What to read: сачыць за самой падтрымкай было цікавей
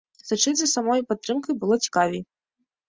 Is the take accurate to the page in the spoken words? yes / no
yes